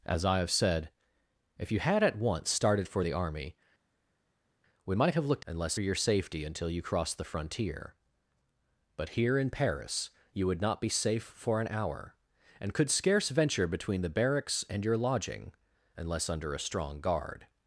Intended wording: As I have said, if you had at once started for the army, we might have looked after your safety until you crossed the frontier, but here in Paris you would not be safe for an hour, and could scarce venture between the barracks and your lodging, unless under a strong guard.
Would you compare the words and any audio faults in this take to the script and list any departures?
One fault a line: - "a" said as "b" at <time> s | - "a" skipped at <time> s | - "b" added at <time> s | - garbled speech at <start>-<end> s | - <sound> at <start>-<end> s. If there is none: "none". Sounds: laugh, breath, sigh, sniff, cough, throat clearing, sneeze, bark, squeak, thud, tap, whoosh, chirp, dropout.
- "after" said as "unless" at 5.4 s